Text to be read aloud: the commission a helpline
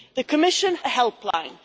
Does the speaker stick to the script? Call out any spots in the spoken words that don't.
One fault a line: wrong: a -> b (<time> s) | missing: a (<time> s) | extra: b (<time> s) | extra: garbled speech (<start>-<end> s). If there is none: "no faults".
no faults